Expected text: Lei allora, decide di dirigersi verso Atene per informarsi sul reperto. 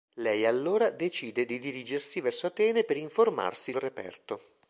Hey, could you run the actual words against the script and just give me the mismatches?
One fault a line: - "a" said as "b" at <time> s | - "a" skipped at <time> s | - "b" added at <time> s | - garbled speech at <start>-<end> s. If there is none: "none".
- "sul" skipped at 3.7 s